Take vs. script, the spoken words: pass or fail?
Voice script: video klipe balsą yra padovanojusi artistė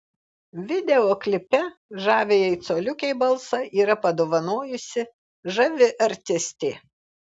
fail